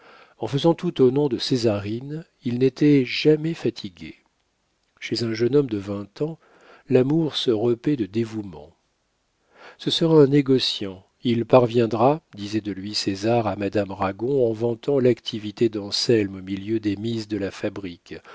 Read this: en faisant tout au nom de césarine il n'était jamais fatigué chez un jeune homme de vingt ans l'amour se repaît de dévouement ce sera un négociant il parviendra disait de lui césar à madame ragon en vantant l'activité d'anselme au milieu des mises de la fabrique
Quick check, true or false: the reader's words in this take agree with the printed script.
true